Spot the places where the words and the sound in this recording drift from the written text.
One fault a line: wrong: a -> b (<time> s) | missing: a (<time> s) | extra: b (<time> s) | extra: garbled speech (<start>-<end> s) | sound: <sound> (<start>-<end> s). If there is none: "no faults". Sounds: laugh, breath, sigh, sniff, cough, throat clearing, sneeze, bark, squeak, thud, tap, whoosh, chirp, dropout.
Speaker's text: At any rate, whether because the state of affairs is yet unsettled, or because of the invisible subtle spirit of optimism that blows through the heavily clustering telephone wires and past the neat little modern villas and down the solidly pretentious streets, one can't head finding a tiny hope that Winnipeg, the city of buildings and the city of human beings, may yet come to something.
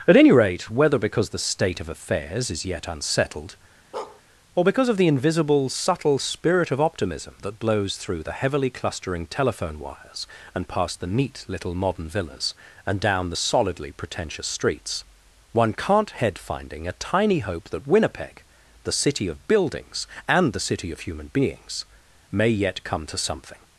sound: bark (3.9-4.2 s)